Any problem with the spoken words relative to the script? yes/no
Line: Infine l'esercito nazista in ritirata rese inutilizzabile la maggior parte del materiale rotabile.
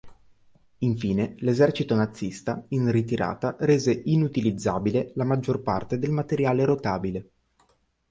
no